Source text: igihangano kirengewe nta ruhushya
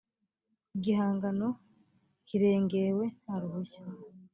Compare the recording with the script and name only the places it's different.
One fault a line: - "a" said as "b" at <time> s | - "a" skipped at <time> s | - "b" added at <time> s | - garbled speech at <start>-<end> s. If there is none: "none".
none